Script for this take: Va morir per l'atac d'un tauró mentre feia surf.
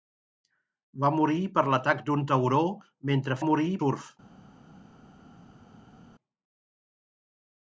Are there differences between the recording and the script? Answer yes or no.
yes